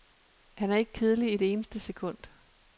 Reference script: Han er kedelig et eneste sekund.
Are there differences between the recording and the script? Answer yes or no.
yes